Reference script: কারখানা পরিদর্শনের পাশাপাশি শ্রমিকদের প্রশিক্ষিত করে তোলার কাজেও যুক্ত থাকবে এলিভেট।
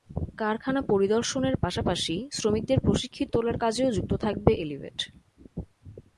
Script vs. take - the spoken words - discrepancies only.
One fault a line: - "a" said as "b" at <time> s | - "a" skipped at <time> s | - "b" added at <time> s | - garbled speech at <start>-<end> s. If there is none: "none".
- "করে" skipped at 3.3 s